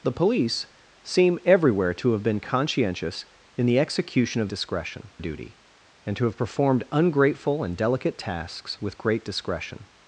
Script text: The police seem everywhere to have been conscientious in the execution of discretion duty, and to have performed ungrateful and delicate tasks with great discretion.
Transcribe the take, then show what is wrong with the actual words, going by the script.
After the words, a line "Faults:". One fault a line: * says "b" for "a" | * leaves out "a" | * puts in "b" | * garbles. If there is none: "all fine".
The police seem everywhere to have been conscientious in the execution of discretion duty, and to have performed ungrateful and delicate tasks with great discretion.
Faults:
all fine